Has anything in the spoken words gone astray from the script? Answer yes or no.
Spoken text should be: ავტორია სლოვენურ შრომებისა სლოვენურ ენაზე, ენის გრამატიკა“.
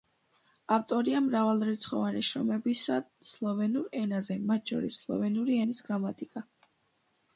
yes